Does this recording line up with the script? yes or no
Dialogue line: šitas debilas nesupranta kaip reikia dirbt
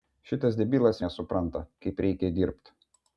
yes